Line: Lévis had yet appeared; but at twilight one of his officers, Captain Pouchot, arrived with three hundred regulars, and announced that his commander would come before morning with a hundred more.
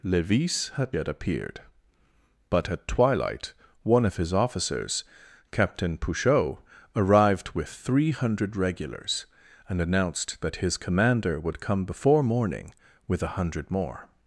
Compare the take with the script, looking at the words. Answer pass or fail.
pass